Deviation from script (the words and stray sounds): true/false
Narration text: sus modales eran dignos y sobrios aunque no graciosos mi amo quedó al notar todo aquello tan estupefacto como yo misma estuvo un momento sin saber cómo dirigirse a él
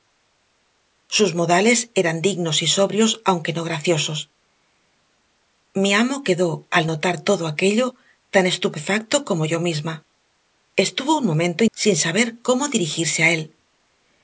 false